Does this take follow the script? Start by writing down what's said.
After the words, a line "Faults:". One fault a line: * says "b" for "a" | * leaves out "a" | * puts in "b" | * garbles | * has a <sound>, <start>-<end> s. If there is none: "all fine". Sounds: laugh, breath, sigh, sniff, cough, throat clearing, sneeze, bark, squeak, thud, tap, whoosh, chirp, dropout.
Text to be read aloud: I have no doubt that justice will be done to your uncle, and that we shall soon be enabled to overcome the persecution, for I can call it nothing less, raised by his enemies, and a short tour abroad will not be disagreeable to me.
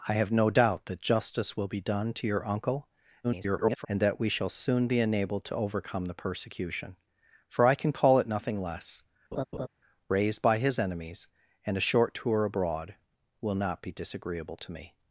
I have no doubt that justice will be done to your uncle, [garbled] and that we shall soon be enabled to overcome the persecution, for I can call it nothing less, raised by his enemies, and a short tour abroad will not be disagreeable to me.
Faults:
* garbles
* has a laugh, 9.3-9.7 s